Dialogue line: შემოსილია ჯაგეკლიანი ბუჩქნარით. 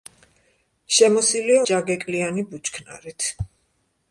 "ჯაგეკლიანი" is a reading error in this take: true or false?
false